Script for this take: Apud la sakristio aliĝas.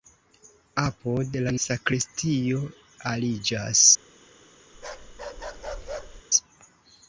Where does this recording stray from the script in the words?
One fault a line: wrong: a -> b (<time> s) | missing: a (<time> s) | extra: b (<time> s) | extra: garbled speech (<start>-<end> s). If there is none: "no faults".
no faults